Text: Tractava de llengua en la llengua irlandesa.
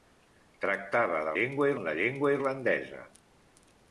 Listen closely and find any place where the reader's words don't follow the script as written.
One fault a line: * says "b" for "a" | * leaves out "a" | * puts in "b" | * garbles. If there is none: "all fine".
all fine